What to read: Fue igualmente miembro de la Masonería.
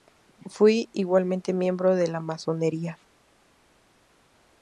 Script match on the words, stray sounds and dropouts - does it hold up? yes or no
yes